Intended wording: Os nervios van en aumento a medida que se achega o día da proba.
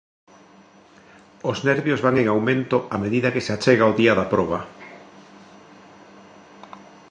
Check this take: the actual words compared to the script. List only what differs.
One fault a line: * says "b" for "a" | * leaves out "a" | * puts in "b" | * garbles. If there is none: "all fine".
all fine